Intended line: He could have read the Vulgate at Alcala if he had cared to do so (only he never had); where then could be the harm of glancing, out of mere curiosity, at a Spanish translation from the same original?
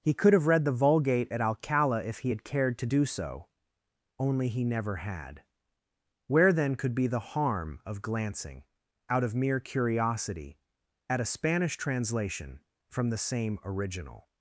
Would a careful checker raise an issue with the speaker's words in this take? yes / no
no